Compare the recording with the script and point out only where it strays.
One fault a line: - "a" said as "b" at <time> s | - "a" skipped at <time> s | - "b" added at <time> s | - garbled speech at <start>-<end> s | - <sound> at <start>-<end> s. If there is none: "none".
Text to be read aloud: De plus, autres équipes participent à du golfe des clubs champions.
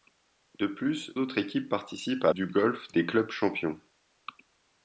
none